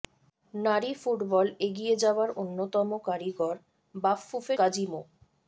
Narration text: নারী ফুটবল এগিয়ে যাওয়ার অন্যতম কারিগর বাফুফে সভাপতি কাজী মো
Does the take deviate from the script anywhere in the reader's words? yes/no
yes